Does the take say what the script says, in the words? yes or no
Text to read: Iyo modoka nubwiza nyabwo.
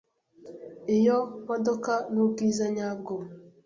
yes